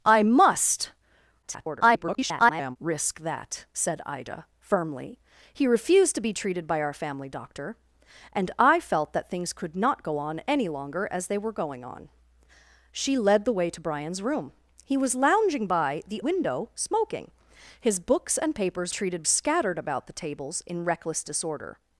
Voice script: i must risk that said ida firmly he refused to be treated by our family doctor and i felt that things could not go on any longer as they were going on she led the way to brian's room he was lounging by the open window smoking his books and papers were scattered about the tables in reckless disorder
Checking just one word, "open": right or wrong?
wrong